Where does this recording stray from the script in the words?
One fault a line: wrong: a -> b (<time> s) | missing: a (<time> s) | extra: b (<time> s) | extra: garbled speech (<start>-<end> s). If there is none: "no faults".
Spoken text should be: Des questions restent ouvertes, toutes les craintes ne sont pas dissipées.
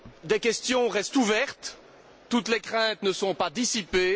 no faults